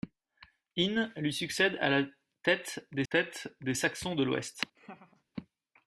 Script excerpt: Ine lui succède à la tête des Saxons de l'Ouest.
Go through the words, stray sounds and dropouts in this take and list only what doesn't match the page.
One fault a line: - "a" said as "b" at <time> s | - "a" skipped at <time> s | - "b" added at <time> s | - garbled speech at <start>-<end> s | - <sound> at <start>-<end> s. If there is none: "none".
- "tête des" added at 3.1 s
- laugh at 4.8-5.2 s